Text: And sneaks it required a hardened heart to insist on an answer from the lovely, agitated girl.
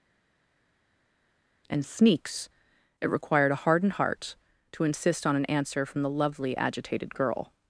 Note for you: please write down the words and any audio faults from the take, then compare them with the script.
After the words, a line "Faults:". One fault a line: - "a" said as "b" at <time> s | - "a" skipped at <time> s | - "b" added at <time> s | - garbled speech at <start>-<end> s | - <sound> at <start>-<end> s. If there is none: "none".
And sneaks it required a hardened heart to insist on an answer from the lovely, agitated girl.
Faults:
none